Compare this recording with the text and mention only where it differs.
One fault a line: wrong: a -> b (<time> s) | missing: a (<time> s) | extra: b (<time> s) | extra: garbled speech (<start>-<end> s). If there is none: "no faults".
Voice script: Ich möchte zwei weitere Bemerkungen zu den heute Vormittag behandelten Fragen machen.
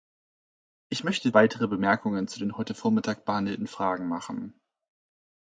missing: zwei (1.3 s)